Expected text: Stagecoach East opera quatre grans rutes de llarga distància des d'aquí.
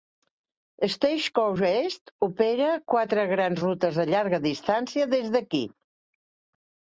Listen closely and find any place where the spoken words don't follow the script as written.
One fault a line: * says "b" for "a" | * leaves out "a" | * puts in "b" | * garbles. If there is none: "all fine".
all fine